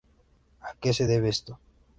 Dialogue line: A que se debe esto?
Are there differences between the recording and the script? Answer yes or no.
no